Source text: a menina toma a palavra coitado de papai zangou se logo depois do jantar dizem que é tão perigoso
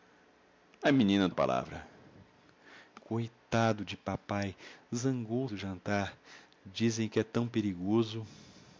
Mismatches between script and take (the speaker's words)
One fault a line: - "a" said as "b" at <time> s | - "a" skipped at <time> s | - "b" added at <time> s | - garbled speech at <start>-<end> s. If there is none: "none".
- "toma" skipped at 1.3 s
- "se logo depois" skipped at 5.5 s